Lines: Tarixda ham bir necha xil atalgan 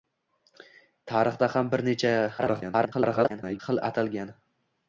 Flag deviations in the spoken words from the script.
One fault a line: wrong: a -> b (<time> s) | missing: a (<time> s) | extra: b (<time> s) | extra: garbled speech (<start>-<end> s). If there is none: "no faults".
extra: garbled speech (2.4-3.6 s)